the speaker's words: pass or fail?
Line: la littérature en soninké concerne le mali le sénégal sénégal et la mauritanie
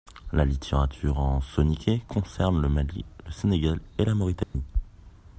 fail